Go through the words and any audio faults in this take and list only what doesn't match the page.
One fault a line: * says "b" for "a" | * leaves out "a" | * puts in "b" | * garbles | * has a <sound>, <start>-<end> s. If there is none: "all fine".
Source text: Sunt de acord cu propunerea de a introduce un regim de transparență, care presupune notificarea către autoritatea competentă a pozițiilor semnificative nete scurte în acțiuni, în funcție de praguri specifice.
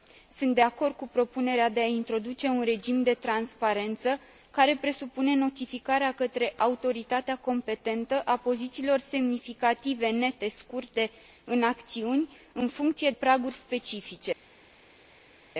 * leaves out "de"